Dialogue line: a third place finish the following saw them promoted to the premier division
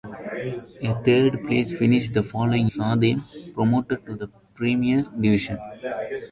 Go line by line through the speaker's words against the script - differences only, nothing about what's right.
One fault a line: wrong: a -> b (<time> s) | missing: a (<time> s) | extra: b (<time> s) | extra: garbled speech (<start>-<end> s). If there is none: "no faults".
no faults